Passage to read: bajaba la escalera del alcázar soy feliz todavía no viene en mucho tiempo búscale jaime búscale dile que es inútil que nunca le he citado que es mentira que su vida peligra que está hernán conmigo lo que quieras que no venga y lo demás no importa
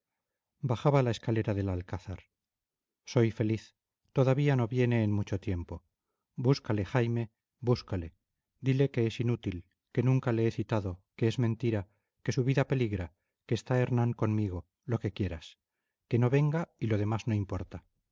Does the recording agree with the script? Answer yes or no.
yes